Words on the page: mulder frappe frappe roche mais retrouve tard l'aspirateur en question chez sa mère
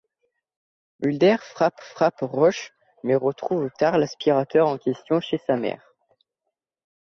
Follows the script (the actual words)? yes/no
yes